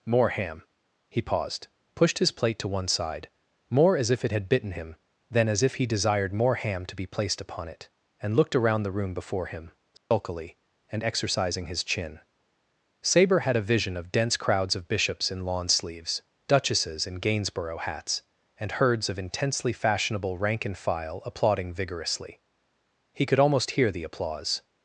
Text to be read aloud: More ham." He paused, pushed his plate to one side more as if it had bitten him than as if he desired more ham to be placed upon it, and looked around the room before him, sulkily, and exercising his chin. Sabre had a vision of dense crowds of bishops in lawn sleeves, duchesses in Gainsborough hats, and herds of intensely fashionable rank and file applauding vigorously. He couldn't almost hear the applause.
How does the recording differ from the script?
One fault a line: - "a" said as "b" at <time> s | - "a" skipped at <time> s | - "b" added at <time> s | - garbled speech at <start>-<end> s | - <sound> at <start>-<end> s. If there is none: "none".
- dropout at 10.0-10.1 s
- "couldn't" said as "could" at 23.3 s